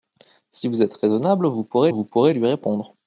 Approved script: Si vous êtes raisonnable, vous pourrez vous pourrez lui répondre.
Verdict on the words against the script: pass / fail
pass